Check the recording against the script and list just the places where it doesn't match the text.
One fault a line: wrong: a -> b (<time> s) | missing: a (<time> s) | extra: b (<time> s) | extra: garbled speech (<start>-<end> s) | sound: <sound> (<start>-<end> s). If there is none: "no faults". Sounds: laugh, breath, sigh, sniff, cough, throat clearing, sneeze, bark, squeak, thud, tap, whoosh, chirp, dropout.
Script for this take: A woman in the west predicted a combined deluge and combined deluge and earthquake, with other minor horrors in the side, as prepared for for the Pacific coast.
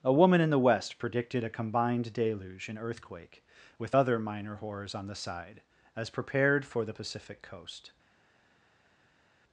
missing: combined deluge and (2.8 s)
wrong: in -> on (4.9 s)
missing: for (6.8 s)